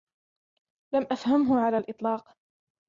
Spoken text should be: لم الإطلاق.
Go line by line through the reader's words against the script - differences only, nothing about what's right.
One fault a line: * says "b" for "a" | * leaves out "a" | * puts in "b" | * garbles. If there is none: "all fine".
* puts in "أفهمه على"